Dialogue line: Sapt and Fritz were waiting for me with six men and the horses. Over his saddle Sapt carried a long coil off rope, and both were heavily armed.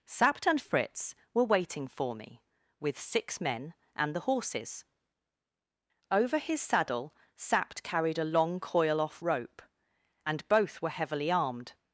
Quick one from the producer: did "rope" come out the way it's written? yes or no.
yes